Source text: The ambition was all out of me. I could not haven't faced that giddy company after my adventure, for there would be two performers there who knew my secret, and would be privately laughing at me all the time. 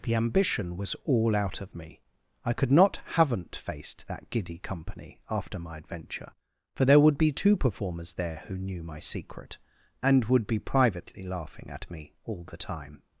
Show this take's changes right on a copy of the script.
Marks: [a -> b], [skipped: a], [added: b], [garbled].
The ambition was all out of me. I could not haven't faced that giddy company after my adventure, for there would be two performers there who knew my secret, and would be privately laughing at me all the time.